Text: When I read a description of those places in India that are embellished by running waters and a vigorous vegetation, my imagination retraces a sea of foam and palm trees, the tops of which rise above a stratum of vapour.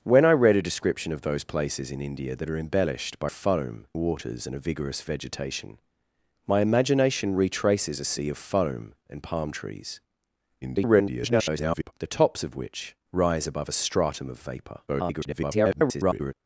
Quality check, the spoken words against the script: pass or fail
fail